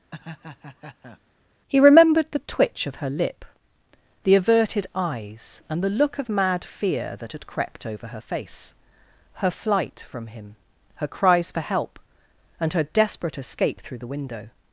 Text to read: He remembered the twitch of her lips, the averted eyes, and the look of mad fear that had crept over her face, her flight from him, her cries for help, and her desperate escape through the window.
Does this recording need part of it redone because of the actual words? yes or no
yes